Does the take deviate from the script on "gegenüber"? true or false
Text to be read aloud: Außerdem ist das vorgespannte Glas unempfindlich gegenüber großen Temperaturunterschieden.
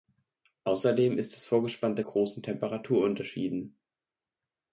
true